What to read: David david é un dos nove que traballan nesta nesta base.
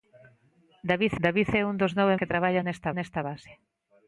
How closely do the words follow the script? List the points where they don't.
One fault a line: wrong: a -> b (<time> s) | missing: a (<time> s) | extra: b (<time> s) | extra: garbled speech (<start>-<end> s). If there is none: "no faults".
no faults